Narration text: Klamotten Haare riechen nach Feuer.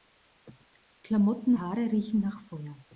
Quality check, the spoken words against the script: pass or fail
pass